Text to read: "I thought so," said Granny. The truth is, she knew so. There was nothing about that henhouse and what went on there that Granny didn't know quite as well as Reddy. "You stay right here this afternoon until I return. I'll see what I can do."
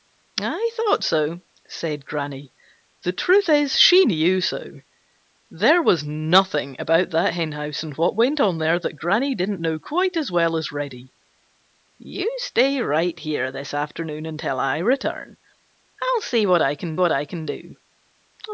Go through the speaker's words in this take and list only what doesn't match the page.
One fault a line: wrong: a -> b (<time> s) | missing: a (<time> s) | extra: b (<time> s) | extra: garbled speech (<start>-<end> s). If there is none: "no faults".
extra: what I can (17.0 s)